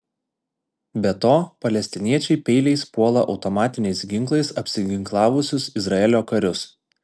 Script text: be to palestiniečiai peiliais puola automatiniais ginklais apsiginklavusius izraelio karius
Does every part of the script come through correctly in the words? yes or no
yes